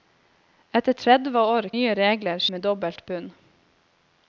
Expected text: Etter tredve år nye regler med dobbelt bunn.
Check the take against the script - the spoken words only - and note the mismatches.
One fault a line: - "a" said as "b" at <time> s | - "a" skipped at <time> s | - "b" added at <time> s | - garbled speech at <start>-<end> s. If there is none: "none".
none